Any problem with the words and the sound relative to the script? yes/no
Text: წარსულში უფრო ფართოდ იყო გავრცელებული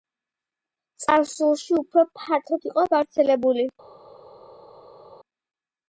no